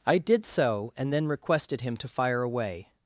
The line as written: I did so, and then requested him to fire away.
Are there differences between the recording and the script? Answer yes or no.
no